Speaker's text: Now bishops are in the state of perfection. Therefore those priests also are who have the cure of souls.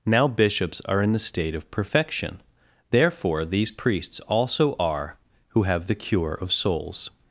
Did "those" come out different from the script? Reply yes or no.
yes